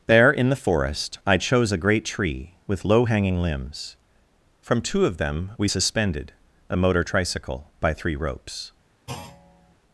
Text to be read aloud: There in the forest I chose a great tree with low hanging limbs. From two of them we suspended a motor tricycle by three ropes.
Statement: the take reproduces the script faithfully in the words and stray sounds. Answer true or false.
false